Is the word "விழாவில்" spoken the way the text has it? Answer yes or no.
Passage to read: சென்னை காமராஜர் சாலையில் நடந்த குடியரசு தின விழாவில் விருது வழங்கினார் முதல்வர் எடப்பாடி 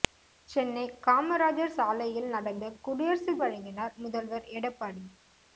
no